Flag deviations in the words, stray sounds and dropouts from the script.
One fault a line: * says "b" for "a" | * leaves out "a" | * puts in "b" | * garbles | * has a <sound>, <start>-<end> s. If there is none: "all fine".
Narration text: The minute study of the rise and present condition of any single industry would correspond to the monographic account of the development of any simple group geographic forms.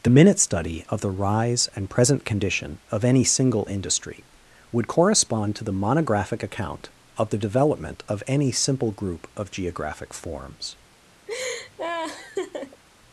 * puts in "of"
* has a laugh, 11.3-12.8 s